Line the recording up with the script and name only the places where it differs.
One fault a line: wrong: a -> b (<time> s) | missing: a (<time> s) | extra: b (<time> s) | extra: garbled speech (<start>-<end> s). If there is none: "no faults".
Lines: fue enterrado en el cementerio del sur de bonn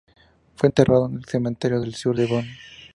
no faults